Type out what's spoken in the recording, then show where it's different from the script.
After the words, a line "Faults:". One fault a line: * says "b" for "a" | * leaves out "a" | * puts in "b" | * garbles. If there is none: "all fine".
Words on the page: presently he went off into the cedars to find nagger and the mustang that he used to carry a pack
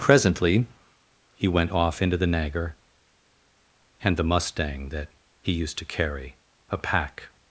presently he went off into the nagger and the mustang that he used to carry a pack
Faults:
* leaves out "cedars to find"